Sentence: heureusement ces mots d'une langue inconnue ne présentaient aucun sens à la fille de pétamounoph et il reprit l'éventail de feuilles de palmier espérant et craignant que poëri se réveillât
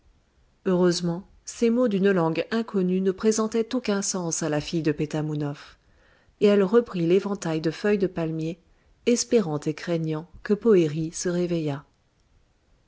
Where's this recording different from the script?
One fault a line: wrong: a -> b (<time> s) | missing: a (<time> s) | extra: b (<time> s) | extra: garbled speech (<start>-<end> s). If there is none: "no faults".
wrong: il -> elle (6.4 s)